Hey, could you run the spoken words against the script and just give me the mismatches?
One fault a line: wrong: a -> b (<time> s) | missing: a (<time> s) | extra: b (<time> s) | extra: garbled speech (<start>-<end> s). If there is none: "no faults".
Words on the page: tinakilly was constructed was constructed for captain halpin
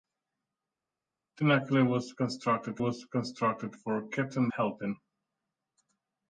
no faults